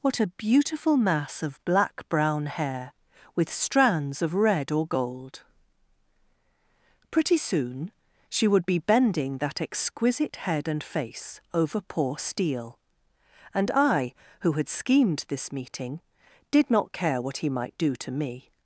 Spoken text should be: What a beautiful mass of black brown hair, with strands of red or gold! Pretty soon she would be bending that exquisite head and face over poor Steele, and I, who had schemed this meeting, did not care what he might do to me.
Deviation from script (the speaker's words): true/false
false